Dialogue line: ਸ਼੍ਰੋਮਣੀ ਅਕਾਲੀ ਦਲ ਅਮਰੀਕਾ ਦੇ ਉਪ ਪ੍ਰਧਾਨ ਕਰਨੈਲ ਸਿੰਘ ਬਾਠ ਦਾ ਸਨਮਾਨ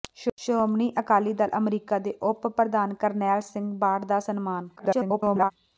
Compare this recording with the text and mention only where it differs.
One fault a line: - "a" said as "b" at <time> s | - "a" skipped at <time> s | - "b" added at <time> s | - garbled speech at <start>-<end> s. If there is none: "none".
- garbled speech at 4.8-5.5 s